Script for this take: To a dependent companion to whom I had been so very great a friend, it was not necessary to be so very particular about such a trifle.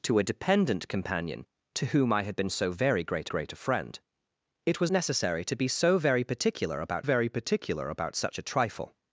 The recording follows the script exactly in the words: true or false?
false